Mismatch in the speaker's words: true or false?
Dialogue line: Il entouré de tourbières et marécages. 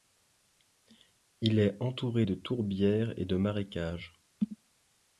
true